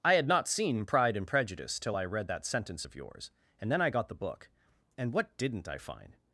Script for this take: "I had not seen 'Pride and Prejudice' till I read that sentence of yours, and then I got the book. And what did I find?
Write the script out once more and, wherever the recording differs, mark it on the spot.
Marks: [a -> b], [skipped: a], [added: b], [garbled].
"I had not seen 'Pride and Prejudice' till I read that sentence of yours, and then I got the book. And what [did -> didn't] I find?